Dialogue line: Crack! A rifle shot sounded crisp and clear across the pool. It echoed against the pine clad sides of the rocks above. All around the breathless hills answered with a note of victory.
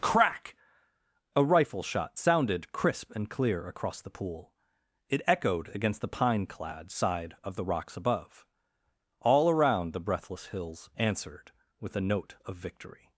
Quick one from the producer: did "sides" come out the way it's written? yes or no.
no